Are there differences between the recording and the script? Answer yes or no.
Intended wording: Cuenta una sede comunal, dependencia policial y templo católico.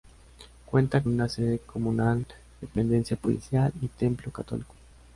no